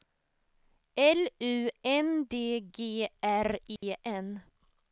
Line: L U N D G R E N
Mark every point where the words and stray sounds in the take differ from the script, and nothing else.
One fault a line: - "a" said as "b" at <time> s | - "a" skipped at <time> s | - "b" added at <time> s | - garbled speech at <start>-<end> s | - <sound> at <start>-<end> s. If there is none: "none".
- dropout at 3.8-3.8 s